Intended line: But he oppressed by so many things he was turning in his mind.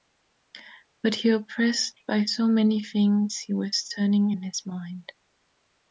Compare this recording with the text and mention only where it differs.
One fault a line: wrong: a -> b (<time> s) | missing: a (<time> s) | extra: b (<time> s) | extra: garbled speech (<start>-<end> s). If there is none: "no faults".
no faults